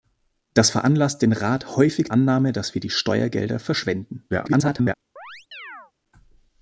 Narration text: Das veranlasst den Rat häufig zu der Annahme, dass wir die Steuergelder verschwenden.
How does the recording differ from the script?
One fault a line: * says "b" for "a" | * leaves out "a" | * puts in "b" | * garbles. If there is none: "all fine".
* leaves out "zu der"
* garbles